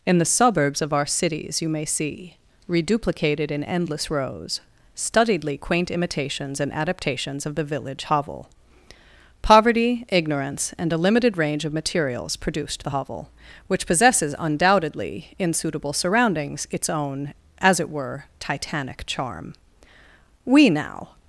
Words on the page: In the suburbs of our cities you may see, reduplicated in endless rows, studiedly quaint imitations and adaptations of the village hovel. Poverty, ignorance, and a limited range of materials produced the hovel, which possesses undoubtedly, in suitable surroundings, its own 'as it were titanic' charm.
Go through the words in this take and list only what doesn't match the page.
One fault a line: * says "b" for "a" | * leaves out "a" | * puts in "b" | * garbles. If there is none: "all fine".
* puts in "We now"